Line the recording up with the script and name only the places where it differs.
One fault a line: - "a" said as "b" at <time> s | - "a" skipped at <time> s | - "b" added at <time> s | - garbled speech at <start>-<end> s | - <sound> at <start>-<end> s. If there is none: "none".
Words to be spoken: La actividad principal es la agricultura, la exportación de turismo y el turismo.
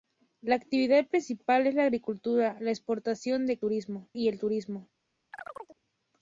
- chirp at 5.3-5.8 s